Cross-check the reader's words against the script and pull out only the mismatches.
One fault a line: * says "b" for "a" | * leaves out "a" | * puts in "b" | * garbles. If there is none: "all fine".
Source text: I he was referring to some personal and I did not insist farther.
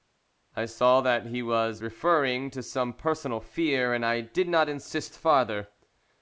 * puts in "saw that"
* puts in "fear"